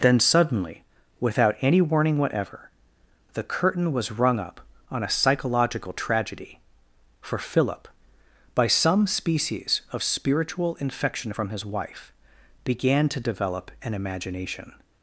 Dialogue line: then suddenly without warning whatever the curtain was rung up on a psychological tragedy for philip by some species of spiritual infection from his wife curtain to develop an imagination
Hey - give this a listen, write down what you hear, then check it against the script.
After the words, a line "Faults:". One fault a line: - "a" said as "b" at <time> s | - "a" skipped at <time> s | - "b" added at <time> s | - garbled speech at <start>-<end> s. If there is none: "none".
then suddenly without any warning whatever the curtain was rung up on a psychological tragedy for philip by some species of spiritual infection from his wife began to develop an imagination
Faults:
- "any" added at 1.6 s
- "curtain" said as "began" at 12.6 s